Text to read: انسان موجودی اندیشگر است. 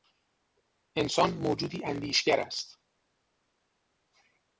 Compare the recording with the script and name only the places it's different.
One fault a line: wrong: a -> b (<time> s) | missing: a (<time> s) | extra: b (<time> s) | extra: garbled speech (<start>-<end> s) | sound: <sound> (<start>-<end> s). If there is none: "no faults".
no faults